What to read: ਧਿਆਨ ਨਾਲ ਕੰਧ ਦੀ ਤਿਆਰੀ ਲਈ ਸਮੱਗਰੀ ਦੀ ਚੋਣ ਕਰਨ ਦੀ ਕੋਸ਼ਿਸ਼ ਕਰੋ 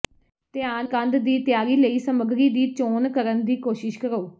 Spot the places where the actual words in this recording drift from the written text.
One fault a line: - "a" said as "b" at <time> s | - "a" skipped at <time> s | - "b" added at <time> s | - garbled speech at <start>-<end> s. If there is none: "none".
- "ਨਾਲ" skipped at 0.8 s